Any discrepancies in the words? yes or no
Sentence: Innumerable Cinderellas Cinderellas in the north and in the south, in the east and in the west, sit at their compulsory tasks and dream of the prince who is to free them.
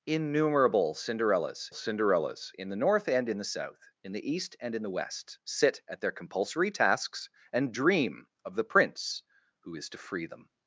no